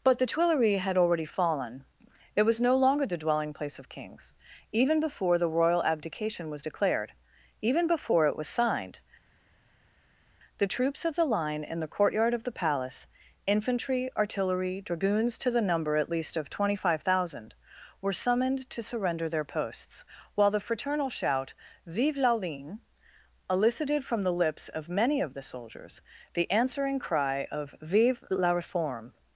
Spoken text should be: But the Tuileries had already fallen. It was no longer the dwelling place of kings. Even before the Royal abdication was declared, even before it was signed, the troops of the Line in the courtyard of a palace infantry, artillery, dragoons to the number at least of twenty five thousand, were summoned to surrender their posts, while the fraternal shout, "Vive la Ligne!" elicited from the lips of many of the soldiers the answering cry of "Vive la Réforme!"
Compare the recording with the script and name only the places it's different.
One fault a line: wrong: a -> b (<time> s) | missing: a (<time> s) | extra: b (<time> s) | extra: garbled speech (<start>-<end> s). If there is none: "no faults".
wrong: a -> the (12.4 s)